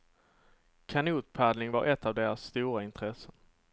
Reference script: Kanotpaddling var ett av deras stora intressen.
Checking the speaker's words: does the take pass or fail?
pass